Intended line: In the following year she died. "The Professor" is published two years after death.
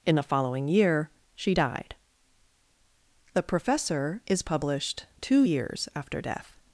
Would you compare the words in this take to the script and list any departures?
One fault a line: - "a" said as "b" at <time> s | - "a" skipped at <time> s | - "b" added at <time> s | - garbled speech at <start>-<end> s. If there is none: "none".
none